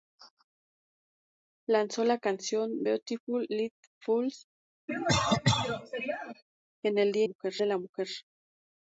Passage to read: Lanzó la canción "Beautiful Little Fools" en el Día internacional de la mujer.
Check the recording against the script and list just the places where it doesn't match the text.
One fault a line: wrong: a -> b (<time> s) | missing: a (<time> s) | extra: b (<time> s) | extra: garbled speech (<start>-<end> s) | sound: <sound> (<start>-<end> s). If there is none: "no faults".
sound: cough (4.9-6.4 s)
wrong: internacional -> mujer (7.2 s)